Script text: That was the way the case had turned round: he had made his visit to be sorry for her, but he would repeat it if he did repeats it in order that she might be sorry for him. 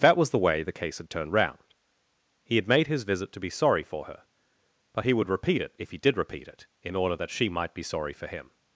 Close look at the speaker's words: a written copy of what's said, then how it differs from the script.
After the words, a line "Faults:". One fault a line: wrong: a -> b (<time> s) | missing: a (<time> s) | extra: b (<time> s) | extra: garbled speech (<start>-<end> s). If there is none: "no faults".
That was the way the case had turned round: he had made his visit to be sorry for her, but he would repeat it if he did repeat it in order that she might be sorry for him.
Faults:
wrong: repeats -> repeat (6.2 s)